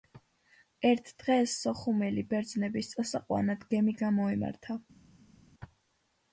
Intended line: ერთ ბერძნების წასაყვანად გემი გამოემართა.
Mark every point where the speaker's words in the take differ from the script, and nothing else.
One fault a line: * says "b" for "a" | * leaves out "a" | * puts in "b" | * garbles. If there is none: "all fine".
* puts in "დღეს სოხუმელი"